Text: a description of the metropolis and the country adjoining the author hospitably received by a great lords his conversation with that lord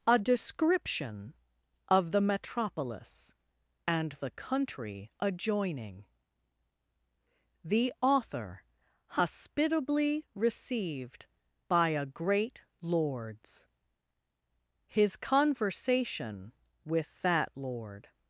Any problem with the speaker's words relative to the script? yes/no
no